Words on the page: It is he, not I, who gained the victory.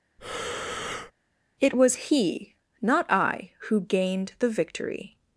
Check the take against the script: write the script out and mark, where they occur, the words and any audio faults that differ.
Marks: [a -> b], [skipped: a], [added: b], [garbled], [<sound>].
[breath] It [is -> was] he, not I, who gained the victory.